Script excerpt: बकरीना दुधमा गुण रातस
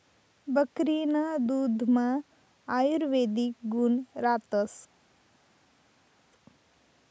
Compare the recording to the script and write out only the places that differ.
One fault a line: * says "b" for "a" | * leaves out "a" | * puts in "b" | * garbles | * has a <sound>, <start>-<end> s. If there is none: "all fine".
* puts in "आयुर्वेदिक"